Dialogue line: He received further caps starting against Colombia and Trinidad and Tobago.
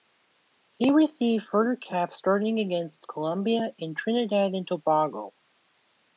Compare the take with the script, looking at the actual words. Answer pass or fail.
pass